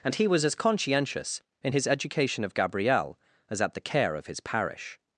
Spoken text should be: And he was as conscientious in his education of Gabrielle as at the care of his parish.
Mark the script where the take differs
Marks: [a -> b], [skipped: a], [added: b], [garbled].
And he was as conscientious in his education of Gabrielle as at the care of his parish.